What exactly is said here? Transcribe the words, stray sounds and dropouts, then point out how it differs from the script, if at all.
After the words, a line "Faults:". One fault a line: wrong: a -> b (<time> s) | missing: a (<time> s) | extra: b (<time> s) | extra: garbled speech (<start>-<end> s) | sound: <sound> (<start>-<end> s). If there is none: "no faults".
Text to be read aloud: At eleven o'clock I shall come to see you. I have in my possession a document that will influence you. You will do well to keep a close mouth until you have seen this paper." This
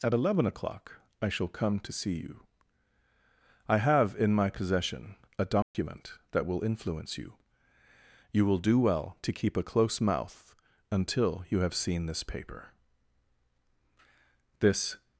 At eleven o'clock I shall come to see you. I have in my possession a document that will influence you. You will do well to keep a close mouth until you have seen this paper." This
Faults:
sound: dropout (5.6-5.7 s)